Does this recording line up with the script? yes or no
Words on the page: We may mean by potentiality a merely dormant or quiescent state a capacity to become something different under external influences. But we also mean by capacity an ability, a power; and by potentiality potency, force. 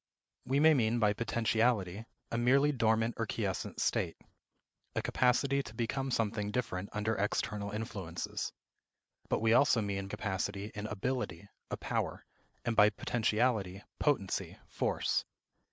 no